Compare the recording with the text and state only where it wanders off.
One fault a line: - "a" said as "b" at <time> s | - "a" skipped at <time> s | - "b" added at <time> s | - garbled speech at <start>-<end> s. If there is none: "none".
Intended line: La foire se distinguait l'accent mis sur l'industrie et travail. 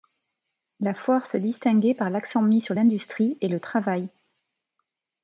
- "par" added at 1.9 s
- "le" added at 3.5 s